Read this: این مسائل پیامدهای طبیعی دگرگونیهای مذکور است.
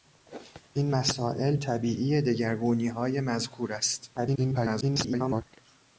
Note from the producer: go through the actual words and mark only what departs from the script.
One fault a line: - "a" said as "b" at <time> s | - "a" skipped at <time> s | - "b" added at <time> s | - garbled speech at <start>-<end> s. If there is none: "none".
- "پیامدهای" skipped at 1.6 s
- garbled speech at 4.2-5.4 s